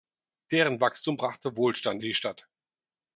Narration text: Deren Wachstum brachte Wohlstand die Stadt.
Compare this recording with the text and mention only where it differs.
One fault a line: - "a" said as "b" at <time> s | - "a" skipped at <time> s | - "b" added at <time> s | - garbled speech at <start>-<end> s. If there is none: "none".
none